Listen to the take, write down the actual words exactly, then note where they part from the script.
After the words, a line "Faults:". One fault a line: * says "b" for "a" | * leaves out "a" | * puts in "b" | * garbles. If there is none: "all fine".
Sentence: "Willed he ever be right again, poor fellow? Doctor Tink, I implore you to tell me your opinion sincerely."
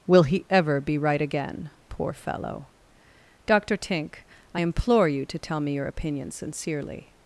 "Will he ever be right again, poor fellow? Doctor Tink, I implore you to tell me your opinion sincerely."
Faults:
* says "Will" for "Willed"